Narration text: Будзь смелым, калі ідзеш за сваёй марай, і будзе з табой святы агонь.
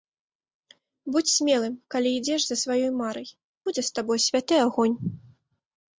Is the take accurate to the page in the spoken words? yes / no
no